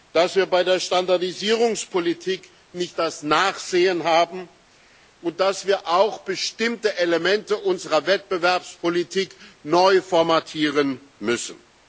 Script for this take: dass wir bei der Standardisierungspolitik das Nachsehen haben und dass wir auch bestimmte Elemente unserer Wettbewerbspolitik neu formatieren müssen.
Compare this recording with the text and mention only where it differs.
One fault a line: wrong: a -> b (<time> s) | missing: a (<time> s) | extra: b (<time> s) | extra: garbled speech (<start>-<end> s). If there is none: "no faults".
extra: nicht (2.7 s)